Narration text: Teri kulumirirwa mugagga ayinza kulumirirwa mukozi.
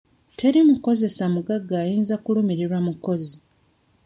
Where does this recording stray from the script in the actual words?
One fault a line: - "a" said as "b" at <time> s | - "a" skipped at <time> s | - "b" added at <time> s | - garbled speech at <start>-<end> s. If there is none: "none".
- "kulumirirwa" said as "mukozesa" at 0.7 s